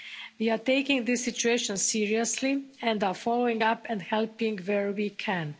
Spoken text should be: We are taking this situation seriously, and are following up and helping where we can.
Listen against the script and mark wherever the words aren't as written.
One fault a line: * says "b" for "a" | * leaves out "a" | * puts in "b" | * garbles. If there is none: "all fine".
all fine